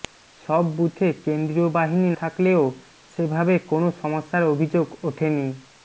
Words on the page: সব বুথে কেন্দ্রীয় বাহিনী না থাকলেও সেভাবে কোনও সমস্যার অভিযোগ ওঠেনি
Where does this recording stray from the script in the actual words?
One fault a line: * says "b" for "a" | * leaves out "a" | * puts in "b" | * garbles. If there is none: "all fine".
* leaves out "না"